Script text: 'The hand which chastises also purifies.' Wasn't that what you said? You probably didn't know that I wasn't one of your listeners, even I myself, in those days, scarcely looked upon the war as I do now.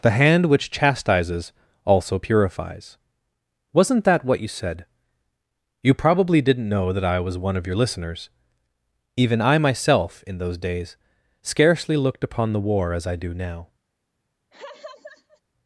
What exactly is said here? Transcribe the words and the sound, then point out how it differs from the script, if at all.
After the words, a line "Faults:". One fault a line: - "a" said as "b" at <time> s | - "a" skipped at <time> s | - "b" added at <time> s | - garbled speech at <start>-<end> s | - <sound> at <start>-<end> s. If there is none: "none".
'The hand which chastises also purifies.' Wasn't that what you said? You probably didn't know that I was one of your listeners, even I myself, in those days, scarcely looked upon the war as I do now.
Faults:
- "wasn't" said as "was" at 7.2 s
- laugh at 14.5-15.4 s